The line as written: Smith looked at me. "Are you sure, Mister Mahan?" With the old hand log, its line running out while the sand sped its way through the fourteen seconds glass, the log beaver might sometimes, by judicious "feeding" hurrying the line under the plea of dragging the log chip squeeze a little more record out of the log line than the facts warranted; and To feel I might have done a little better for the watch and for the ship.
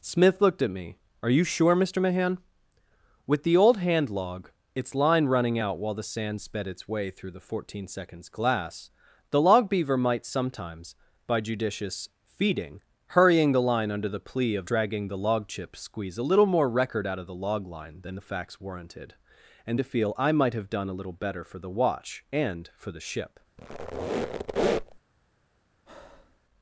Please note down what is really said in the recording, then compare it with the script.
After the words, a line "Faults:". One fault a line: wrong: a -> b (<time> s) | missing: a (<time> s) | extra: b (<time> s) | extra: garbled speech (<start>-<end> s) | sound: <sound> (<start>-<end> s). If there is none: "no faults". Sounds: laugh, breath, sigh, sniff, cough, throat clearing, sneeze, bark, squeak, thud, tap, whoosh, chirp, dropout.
Smith looked at me. "Are you sure, Mister Mahan?" With the old hand log, its line running out while the sand sped its way through the fourteen seconds glass, the log beaver might sometimes, by judicious "feeding" hurrying the line under the plea of dragging the log chip squeeze a little more record out of the log line than the facts warranted; and To feel I might have done a little better for the watch and for the ship.
Faults:
sound: squeak (23.6-25.0 s)
sound: breath (25.9-26.4 s)